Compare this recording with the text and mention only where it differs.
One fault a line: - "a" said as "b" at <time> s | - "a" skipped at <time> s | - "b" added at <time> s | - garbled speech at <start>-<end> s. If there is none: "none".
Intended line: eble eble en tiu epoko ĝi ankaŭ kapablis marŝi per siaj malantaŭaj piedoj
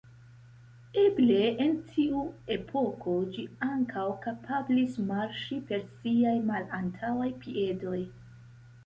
- "eble" skipped at 1.4 s